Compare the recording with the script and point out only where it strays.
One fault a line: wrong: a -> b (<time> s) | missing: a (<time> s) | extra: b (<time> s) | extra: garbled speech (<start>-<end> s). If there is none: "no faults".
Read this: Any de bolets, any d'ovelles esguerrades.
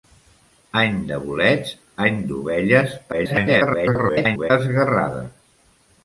extra: garbled speech (3.1-4.5 s)